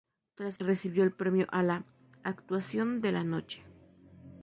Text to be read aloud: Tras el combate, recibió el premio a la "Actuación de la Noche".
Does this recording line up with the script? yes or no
no